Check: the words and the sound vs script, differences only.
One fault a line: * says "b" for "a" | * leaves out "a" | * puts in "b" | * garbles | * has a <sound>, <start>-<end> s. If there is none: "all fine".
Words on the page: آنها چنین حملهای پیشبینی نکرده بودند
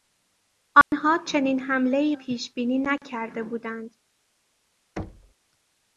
* has a dropout, 0.8-0.9 s
* has a thud, 5.0-5.3 s